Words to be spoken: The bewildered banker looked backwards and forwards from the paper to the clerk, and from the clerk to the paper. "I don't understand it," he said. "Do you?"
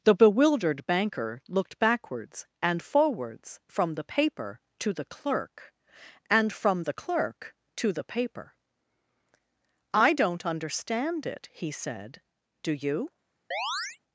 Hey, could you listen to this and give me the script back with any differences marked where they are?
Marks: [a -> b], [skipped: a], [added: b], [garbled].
The bewildered banker looked backwards and forwards from the paper to the clerk, and from the clerk to the paper. "I don't understand it," he said. "Do you?"